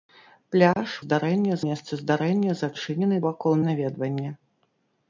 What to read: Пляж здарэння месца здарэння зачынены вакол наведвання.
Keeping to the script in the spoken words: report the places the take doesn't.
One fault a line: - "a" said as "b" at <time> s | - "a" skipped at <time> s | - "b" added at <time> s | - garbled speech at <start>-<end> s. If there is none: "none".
none